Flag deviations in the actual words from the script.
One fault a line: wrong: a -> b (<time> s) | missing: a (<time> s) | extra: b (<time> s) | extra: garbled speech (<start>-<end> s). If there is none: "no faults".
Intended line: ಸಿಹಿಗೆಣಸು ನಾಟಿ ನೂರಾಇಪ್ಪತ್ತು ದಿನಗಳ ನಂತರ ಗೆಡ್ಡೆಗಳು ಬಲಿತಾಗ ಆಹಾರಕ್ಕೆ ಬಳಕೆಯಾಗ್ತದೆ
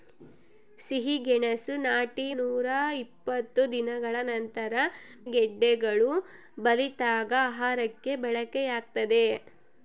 no faults